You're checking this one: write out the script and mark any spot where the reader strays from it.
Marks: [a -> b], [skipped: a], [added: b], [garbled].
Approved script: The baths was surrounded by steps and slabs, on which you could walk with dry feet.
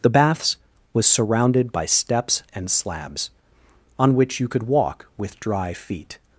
The baths was surrounded by steps and slabs, on which you could walk with dry feet.